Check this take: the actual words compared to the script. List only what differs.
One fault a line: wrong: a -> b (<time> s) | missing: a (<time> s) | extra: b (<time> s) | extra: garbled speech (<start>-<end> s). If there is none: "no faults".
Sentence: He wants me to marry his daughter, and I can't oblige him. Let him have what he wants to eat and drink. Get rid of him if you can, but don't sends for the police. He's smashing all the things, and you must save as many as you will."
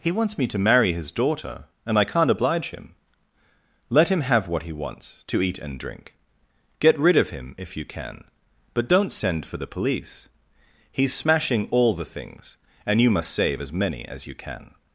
wrong: sends -> send (9.1 s)
wrong: will -> can (14.3 s)